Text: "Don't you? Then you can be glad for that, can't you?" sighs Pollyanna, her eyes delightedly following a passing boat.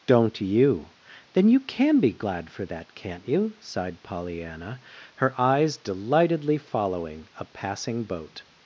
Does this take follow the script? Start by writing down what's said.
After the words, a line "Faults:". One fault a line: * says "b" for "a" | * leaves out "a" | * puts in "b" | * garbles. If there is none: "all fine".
"Don't you? Then you can be glad for that, can't you?" sighed Pollyanna, her eyes delightedly following a passing boat.
Faults:
* says "sighed" for "sighs"